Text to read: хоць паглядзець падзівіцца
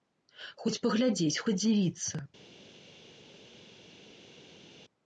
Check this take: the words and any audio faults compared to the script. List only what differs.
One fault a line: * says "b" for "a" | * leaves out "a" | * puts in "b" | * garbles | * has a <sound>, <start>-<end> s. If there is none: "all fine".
all fine